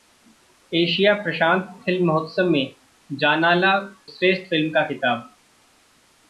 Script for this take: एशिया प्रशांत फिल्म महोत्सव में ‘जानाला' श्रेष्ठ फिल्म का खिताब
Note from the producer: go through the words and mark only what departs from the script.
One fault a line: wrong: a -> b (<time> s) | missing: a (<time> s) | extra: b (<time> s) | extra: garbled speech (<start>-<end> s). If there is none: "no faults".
no faults